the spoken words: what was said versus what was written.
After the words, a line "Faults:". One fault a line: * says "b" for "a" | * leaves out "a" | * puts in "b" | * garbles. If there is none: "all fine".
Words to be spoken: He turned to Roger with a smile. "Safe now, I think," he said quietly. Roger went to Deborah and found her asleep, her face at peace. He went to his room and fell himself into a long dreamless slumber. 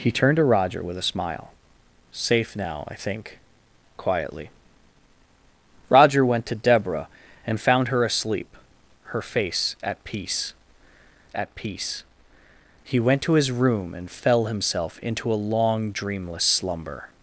He turned to Roger with a smile. "Safe now, I think," quietly. Roger went to Deborah and found her asleep, her face at peace at peace. He went to his room and fell himself into a long dreamless slumber.
Faults:
* leaves out "he said"
* puts in "at peace"